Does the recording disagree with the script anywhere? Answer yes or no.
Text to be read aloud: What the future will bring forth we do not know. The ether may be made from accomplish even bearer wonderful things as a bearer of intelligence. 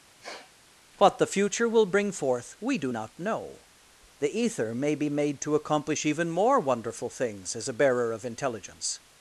yes